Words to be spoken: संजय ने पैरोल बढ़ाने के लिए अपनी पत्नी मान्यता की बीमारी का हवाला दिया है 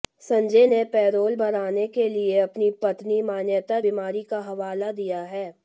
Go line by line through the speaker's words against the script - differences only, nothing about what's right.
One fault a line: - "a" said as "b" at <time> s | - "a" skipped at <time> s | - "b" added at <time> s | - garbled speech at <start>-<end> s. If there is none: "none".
- "की" skipped at 3.8 s